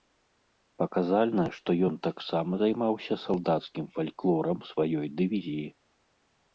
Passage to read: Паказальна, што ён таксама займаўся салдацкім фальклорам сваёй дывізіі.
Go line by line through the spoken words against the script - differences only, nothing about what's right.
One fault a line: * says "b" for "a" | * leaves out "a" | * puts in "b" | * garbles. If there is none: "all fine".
all fine